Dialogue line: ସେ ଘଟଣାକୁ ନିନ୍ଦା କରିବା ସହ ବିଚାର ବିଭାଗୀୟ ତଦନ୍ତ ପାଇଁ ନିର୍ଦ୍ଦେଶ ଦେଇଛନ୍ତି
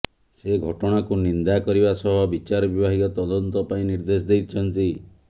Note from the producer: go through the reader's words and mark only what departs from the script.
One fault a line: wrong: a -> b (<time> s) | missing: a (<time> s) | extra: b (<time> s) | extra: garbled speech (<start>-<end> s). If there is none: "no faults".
no faults